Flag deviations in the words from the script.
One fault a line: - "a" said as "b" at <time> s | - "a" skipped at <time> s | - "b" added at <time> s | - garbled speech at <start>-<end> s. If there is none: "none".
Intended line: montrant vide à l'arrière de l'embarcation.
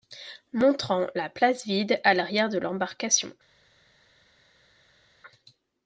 - "la place" added at 1.1 s